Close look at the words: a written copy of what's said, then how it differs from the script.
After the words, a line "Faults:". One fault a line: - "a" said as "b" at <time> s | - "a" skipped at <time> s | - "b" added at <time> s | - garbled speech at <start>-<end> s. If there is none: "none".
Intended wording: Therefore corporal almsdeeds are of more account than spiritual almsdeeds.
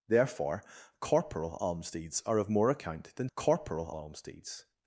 Therefore corporal almsdeeds are of more account than corporal almsdeeds.
Faults:
- "spiritual" said as "corporal" at 3.3 s